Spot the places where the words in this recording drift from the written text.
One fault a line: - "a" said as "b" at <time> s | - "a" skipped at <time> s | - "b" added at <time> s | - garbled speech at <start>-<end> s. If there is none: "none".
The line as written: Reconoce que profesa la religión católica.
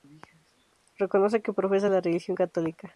none